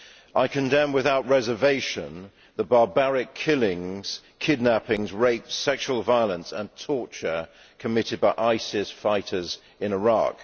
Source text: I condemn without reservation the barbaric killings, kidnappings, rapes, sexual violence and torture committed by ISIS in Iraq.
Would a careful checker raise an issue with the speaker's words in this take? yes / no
yes